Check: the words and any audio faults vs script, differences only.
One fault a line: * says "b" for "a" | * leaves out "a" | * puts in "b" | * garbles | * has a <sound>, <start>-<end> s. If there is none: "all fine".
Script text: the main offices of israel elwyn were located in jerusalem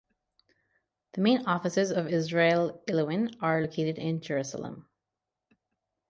* says "are" for "were"